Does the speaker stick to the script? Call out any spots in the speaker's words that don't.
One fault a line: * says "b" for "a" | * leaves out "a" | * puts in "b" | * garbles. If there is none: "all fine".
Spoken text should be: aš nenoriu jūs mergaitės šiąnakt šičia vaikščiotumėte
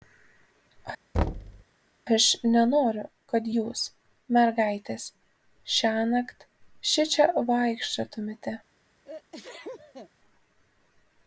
* puts in "kad"